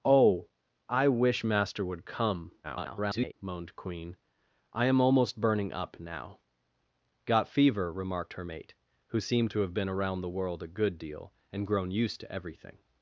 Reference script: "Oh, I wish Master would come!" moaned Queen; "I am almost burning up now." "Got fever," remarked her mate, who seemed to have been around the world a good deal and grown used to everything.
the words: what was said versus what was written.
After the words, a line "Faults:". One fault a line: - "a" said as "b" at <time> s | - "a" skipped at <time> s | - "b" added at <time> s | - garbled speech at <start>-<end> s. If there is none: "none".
"Oh, I wish Master would come!" [garbled] moaned Queen; "I am almost burning up now." "Got fever," remarked her mate, who seemed to have been around the world a good deal and grown used to everything.
Faults:
- garbled speech at 2.6-3.3 s